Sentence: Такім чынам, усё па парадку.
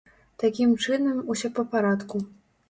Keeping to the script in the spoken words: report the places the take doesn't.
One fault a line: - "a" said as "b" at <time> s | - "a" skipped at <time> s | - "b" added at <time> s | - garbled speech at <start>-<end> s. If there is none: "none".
none